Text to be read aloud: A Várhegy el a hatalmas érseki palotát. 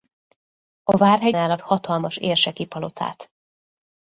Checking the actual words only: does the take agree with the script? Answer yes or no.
yes